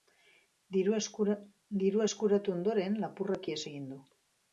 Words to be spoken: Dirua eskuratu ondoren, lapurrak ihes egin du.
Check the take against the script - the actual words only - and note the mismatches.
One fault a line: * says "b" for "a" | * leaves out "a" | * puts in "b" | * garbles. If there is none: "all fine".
all fine